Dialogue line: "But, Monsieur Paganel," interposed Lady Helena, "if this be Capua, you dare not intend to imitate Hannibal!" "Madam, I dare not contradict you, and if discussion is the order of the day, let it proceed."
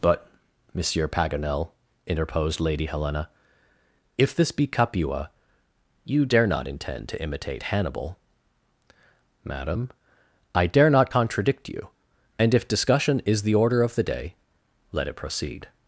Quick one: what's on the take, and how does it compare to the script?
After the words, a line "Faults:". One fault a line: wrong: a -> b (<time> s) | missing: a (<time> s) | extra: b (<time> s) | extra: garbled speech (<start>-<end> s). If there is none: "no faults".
"But, Monsieur Paganel," interposed Lady Helena, "if this be Capua, you dare not intend to imitate Hannibal!" "Madam, I dare not contradict you, and if discussion is the order of the day, let it proceed."
Faults:
no faults